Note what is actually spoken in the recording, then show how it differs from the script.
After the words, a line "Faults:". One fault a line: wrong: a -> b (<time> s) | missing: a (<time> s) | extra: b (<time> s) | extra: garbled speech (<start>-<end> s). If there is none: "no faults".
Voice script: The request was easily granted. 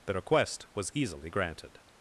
The request was easily granted.
Faults:
no faults